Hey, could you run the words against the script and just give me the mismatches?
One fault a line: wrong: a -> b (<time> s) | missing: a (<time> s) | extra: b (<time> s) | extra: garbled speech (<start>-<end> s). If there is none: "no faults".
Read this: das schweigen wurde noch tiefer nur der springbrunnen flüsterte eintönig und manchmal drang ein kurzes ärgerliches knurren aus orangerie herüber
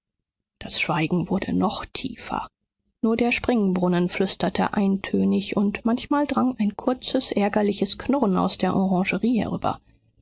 extra: der (8.6 s)